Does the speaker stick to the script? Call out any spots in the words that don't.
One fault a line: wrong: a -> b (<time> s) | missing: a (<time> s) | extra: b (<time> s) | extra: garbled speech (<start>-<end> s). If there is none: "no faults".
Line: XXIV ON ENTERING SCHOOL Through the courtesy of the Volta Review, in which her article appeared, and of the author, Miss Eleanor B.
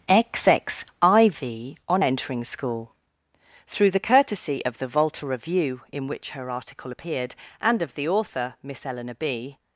no faults